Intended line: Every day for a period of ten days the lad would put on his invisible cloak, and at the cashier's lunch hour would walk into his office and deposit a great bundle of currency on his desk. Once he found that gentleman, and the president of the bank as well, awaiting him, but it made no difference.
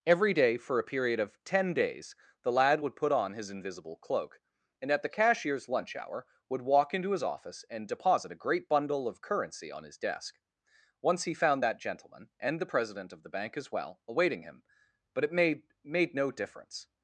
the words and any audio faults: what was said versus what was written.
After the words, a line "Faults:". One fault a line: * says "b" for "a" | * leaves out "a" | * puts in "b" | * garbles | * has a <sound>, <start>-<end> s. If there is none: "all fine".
Every day for a period of ten days the lad would put on his invisible cloak, and at the cashier's lunch hour would walk into his office and deposit a great bundle of currency on his desk. Once he found that gentleman, and the president of the bank as well, awaiting him, but it made made no difference.
Faults:
* puts in "made"